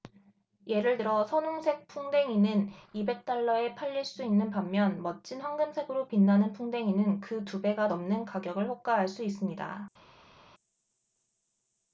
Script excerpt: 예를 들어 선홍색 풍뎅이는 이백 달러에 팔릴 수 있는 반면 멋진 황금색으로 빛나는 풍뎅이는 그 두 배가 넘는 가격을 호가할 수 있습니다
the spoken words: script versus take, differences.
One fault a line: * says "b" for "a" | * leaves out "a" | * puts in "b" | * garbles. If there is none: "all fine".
all fine